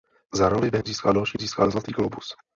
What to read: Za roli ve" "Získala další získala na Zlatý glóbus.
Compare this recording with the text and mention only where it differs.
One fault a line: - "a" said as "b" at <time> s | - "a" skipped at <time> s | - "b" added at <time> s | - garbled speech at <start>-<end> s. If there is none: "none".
none